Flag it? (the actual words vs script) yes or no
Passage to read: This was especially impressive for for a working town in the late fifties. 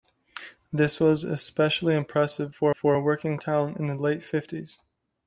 no